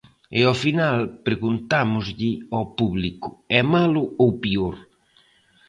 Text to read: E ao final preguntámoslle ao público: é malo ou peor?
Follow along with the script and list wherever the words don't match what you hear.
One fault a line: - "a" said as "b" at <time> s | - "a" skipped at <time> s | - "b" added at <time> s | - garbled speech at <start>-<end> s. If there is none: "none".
none